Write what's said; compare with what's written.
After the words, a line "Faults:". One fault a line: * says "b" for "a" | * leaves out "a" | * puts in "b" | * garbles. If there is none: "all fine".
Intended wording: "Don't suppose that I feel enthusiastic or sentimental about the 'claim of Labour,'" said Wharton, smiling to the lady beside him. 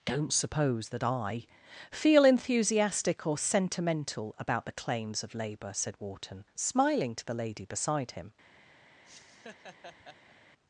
"Don't suppose that I feel enthusiastic or sentimental about the 'claims of Labour,'" said Wharton, smiling to the lady beside him.
Faults:
* says "claims" for "claim"